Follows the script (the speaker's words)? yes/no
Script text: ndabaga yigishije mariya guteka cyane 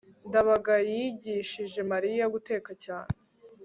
yes